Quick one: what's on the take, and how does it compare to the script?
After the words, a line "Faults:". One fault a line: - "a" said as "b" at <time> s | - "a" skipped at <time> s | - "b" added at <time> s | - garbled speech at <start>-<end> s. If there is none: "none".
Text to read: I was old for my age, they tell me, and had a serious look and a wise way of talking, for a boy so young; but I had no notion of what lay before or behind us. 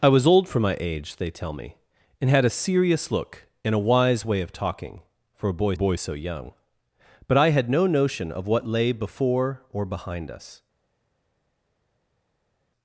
I was old for my age, they tell me, and had a serious look and a wise way of talking, for a boy boy so young; but I had no notion of what lay before or behind us.
Faults:
- "boy" added at 5.7 s